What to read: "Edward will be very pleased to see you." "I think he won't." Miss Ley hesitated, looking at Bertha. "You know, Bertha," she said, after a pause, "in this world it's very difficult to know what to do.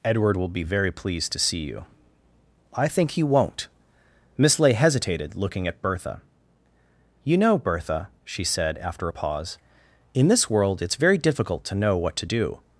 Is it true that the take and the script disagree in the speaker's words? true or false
false